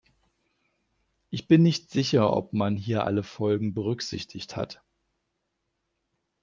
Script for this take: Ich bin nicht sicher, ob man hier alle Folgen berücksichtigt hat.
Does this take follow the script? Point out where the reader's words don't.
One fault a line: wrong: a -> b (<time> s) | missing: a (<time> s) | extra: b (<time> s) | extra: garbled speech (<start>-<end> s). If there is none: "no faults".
no faults